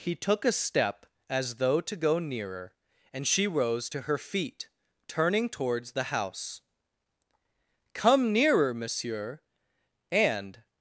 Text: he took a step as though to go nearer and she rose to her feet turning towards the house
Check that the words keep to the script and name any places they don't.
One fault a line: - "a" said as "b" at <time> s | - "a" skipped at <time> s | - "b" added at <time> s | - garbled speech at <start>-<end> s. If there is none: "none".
- "come nearer monsieur and" added at 7.9 s